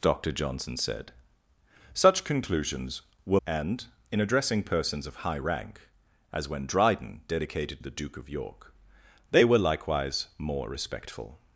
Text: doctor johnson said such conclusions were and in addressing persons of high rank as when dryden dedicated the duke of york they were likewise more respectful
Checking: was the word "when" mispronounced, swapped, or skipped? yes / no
no